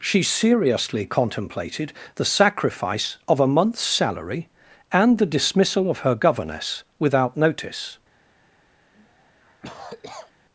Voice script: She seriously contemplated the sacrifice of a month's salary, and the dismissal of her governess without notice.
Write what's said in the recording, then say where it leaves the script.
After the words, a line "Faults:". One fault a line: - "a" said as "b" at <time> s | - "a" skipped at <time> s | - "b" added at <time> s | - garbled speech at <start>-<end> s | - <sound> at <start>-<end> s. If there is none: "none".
She seriously contemplated the sacrifice of a month's salary, and the dismissal of her governess without notice.
Faults:
- cough at 8.9-10.3 s